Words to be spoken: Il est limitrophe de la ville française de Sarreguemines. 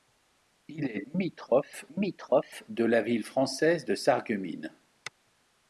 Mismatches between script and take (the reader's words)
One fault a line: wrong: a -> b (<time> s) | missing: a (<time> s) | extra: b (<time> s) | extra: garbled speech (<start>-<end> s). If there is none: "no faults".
extra: limitrophe (1.9 s)